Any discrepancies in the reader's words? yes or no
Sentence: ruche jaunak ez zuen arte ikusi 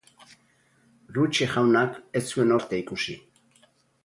no